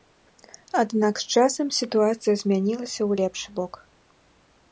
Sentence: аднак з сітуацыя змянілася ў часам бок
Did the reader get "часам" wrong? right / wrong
wrong